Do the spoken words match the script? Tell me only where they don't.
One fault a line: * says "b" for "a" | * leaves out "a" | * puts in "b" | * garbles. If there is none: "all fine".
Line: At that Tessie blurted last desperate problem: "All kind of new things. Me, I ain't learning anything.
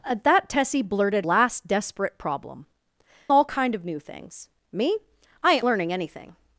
all fine